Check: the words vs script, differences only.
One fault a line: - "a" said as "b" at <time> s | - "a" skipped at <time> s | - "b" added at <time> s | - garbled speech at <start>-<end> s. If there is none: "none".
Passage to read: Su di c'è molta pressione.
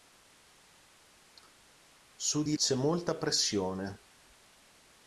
none